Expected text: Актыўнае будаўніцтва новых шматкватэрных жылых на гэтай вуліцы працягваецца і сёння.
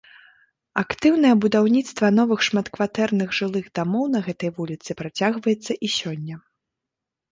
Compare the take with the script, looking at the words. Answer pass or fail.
fail